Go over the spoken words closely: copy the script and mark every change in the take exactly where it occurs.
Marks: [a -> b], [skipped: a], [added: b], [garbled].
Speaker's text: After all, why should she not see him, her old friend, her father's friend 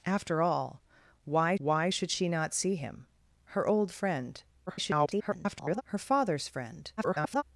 After all, why [added: why] should she not see him, her old friend, [garbled] her father's friend [garbled]